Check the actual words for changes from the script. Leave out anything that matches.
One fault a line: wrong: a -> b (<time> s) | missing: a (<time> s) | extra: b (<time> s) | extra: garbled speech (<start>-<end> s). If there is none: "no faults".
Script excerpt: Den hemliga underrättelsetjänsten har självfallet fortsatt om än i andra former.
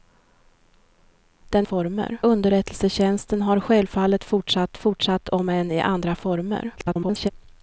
wrong: hemliga -> former (1.6 s)
extra: fortsatt (4.8 s)
extra: garbled speech (6.8-7.3 s)